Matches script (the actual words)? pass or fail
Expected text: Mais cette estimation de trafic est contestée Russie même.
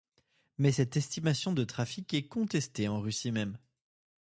fail